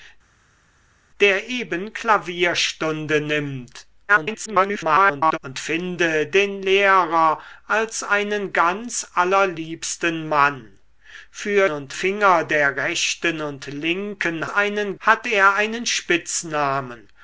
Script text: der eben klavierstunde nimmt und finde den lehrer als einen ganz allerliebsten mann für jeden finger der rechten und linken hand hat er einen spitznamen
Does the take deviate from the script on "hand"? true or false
true